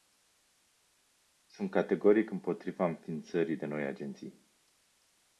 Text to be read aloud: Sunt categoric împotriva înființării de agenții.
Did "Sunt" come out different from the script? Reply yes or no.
no